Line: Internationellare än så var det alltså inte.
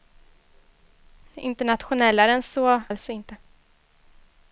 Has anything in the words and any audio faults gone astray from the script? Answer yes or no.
yes